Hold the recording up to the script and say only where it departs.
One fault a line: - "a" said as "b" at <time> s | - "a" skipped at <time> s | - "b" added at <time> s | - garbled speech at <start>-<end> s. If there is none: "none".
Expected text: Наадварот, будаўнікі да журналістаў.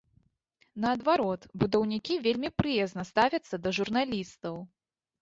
- "вельмі прыязна ставяцца" added at 2.3 s